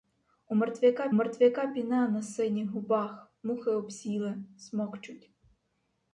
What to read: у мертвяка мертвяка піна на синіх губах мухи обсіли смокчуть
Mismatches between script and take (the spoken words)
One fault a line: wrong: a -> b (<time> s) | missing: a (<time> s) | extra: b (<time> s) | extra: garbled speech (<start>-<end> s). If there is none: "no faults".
no faults